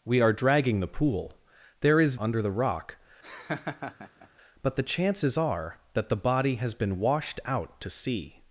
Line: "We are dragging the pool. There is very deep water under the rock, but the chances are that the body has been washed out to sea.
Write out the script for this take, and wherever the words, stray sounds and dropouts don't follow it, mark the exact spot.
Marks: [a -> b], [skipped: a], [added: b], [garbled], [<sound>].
"We are dragging the pool. There is [skipped: very deep water] under the rock, [laugh] but the chances are that the body has been washed out to sea.